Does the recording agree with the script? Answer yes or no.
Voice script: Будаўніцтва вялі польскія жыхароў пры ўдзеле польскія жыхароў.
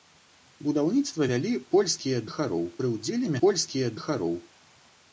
yes